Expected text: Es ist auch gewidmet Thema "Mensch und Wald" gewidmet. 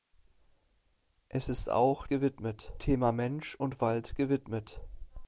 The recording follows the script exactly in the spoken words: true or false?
true